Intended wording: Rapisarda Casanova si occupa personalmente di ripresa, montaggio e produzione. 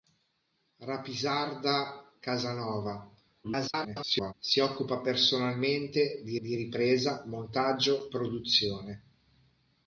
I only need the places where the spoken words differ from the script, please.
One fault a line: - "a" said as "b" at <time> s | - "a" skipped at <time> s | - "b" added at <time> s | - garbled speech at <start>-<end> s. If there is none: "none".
- garbled speech at 3.4-4.3 s
- "di" added at 6.4 s
- "e" skipped at 8.1 s